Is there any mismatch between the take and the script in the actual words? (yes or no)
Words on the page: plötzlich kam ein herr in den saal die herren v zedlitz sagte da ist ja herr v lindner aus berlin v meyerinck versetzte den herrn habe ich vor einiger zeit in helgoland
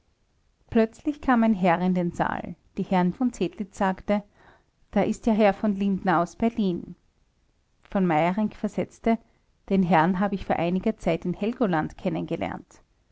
no